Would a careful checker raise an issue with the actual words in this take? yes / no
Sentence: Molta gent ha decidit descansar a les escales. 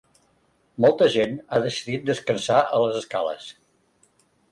no